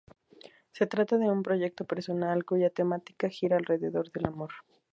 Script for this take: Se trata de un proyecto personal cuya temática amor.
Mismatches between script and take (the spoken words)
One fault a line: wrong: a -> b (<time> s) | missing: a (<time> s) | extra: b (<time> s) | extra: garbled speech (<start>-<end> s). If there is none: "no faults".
extra: gira alrededor del (3.3 s)